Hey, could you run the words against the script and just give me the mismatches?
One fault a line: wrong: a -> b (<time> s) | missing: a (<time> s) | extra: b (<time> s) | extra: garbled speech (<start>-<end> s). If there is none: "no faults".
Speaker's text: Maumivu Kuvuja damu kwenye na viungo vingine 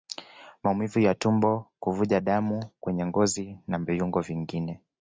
extra: ya tumbo (1.0 s)
extra: ngozi (3.1 s)